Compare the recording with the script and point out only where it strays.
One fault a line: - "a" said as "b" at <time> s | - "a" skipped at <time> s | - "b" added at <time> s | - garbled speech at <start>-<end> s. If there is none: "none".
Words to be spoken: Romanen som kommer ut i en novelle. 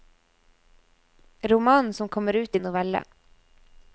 none